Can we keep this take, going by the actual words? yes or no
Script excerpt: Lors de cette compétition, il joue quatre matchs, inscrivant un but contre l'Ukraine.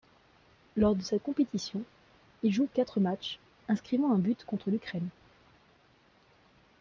yes